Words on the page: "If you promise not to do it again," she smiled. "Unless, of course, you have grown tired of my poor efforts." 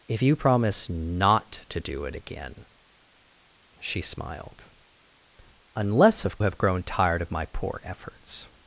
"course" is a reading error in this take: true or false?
true